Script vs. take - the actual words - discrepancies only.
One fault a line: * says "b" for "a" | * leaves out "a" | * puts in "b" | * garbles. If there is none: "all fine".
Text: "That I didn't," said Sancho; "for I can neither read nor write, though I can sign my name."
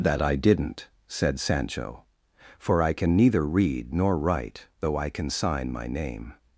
all fine